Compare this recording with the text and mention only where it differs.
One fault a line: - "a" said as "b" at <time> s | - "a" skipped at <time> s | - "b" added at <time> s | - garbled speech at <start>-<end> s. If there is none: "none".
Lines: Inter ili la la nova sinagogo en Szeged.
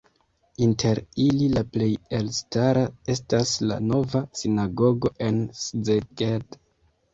- "plej elstara estas" added at 1.8 s